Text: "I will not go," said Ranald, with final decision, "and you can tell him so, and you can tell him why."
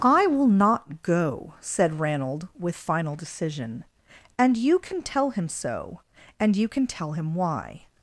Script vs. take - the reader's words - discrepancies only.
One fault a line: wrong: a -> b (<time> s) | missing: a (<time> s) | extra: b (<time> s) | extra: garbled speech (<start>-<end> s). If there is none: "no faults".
no faults